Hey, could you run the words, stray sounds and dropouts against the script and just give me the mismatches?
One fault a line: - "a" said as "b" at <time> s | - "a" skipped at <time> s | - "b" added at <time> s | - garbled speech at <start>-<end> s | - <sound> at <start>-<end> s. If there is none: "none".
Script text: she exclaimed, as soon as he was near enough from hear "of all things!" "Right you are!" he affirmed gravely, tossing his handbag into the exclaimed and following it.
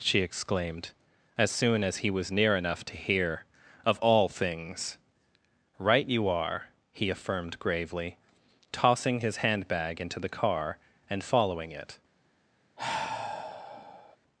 - "from" said as "to" at 2.9 s
- "exclaimed" said as "car" at 10.3 s
- sigh at 12.8-14.2 s